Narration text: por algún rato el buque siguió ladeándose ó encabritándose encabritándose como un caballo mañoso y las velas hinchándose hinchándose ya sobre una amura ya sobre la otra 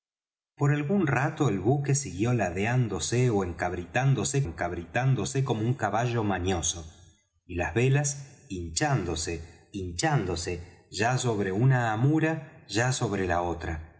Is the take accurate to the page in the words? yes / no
yes